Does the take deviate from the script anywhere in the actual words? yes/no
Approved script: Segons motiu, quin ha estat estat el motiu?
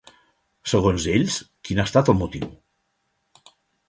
yes